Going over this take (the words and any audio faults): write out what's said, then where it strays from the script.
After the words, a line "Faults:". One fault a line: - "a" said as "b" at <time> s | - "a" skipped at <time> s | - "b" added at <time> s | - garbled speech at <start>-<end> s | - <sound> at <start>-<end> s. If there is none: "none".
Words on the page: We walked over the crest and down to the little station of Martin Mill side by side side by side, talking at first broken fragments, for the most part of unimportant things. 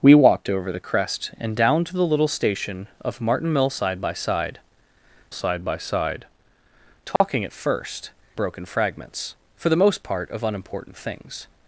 We walked over the crest and down to the little station of Martin Mill side by side side by side, talking at first broken fragments, for the most part of unimportant things.
Faults:
- dropout at 7.2-7.2 s